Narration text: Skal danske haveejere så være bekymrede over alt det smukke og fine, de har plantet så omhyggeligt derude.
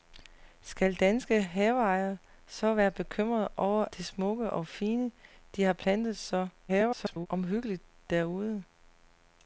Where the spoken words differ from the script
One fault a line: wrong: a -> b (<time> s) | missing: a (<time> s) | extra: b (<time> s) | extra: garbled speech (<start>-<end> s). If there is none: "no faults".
missing: alt (3.9 s)
extra: garbled speech (6.7-7.3 s)